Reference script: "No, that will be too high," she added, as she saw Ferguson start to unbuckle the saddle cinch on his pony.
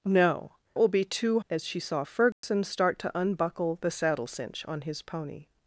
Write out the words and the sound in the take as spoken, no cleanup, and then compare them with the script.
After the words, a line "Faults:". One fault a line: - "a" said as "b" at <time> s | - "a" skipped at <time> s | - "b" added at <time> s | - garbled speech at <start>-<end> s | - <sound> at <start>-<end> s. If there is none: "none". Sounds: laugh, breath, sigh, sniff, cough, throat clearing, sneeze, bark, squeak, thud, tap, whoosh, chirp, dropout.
"No, will be too as she saw Ferguson start to unbuckle the saddle cinch on his pony.
Faults:
- "that" skipped at 0.6 s
- "high she added" skipped at 1.4 s
- dropout at 2.3-2.4 s